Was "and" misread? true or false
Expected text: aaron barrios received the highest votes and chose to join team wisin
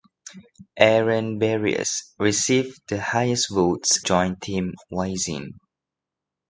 true